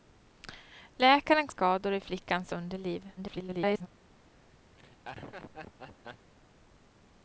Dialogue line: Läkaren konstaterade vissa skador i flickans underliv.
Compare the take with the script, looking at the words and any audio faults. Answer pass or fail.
fail